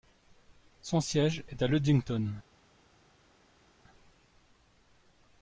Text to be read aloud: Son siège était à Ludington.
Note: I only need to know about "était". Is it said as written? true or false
false